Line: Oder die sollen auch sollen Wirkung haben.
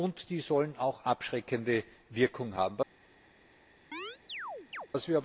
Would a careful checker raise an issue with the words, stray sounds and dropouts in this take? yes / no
yes